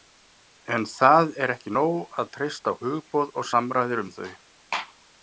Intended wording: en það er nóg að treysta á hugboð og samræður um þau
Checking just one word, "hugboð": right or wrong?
right